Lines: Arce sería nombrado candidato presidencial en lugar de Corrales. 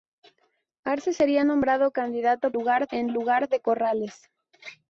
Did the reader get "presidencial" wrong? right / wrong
wrong